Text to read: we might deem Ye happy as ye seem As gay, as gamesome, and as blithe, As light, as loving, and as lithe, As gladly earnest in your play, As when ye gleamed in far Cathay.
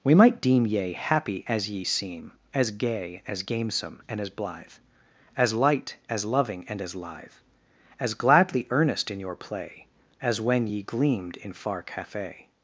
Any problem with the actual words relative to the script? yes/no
no